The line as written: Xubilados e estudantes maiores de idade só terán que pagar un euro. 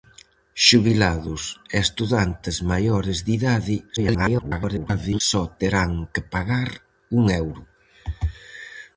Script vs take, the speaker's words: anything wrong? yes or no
yes